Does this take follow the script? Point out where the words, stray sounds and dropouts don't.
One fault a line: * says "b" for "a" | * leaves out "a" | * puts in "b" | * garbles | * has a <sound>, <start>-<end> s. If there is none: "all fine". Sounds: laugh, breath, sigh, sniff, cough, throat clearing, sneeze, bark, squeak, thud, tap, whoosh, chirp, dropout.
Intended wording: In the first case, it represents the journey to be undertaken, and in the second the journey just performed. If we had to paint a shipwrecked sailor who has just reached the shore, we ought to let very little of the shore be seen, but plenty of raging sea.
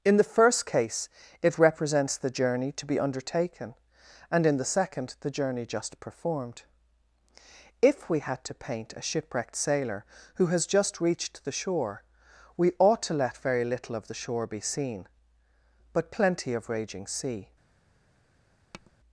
* has a tap, 18.7-18.9 s